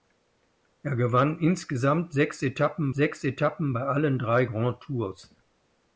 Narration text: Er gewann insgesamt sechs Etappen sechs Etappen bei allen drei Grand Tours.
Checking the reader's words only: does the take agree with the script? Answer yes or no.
yes